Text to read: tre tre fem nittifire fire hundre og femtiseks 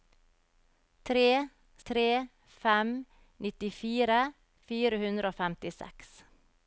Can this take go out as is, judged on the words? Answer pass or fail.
pass